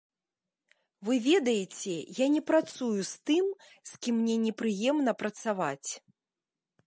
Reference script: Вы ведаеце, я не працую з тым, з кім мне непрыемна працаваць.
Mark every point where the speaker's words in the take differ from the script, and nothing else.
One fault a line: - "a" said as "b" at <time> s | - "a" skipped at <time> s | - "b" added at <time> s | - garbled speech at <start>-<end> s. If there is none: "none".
none